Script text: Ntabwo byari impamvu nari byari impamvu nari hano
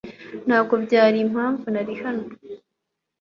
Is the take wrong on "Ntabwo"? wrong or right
right